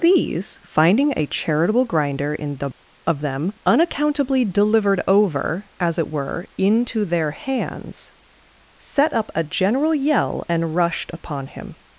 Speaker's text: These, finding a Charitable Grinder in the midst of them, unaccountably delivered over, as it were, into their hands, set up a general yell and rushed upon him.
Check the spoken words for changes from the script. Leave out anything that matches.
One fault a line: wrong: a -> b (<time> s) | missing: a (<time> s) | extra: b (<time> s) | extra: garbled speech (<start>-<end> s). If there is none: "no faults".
missing: midst (2.7 s)